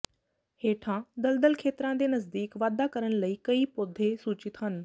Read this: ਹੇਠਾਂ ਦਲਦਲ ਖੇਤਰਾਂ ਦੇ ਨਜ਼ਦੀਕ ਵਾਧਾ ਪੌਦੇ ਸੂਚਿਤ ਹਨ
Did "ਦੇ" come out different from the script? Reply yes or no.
no